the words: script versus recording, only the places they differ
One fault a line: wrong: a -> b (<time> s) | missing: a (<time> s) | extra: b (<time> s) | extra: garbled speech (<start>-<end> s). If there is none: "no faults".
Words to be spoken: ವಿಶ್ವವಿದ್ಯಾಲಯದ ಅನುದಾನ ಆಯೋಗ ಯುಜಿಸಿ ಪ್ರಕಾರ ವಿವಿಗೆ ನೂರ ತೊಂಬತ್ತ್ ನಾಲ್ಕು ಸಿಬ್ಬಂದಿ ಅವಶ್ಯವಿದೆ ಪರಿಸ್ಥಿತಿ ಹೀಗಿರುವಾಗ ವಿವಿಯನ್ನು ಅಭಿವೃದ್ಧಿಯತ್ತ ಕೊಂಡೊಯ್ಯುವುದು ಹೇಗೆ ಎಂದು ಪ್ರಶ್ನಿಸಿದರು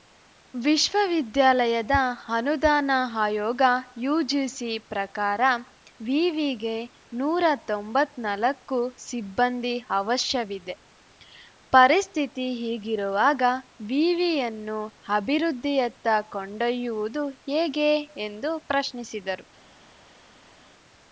no faults